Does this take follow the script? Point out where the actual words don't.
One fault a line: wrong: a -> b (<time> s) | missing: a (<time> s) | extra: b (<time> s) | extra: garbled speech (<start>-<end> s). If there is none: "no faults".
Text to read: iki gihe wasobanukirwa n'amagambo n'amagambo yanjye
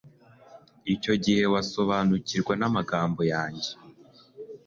wrong: iki -> icyo (0.9 s)
missing: n'amagambo (3.2 s)